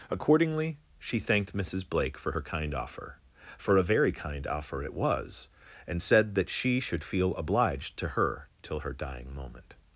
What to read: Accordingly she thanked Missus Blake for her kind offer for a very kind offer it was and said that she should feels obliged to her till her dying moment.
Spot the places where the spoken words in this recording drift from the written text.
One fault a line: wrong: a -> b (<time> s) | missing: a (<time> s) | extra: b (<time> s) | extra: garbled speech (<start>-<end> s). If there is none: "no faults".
wrong: feels -> feel (7.0 s)